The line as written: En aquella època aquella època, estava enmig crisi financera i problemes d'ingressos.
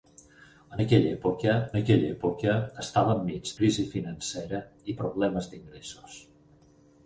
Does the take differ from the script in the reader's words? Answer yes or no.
no